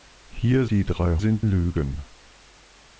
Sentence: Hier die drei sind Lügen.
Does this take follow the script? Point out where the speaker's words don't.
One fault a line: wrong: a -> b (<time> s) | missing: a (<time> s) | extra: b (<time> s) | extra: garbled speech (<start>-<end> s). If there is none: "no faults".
no faults